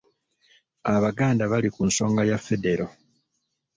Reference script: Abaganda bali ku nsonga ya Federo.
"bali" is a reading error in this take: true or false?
false